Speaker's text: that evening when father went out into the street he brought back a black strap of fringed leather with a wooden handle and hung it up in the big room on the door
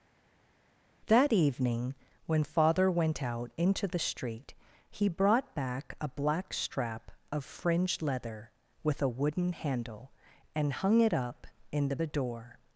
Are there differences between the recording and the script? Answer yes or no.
yes